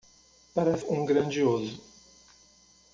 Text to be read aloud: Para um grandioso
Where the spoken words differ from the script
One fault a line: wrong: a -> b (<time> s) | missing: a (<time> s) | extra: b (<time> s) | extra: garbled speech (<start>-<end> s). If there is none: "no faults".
no faults